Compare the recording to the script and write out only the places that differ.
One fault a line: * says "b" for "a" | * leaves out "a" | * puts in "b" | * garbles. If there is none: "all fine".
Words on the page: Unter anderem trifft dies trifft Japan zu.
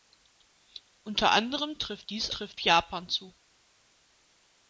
all fine